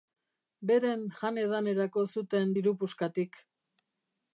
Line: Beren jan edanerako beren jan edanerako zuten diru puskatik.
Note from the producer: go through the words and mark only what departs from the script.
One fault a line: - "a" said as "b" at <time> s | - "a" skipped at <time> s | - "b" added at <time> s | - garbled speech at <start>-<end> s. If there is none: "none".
- "beren jan edanerako" skipped at 2.1 s